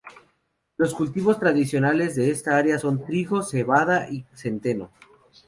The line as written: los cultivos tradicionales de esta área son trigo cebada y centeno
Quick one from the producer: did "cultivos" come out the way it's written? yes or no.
yes